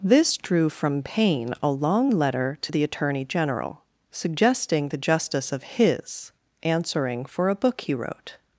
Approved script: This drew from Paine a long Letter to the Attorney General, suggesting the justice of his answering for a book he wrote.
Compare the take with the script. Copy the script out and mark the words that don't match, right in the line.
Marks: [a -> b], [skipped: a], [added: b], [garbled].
This drew from Paine a long Letter to the Attorney General, suggesting the justice of his answering for a book he wrote.